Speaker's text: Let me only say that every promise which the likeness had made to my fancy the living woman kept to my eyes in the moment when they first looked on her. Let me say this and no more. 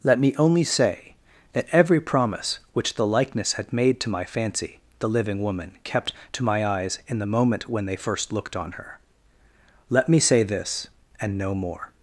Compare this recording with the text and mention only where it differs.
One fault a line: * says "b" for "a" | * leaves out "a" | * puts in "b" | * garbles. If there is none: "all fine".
all fine